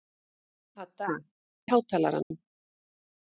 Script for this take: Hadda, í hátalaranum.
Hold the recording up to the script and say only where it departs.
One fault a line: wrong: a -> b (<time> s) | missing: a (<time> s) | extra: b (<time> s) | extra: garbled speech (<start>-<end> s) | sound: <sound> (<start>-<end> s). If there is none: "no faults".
sound: dropout (2.2-2.3 s)